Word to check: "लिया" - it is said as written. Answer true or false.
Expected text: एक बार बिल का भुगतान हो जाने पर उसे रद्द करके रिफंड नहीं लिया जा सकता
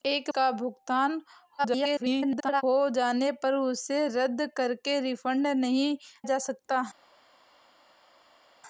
false